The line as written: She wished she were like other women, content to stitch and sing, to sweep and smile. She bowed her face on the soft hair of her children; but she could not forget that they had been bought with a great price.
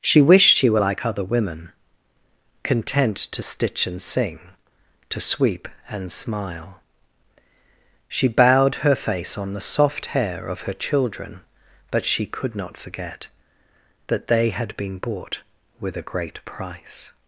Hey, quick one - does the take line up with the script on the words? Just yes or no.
yes